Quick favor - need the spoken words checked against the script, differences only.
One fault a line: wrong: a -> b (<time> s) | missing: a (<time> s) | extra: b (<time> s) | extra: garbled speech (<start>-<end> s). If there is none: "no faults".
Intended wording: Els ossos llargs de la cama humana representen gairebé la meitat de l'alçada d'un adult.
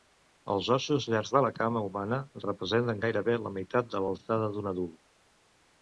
no faults